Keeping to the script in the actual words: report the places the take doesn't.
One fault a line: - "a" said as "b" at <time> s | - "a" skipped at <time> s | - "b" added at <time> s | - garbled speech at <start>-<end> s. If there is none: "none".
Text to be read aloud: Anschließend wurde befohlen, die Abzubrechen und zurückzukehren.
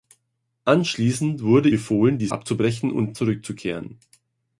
none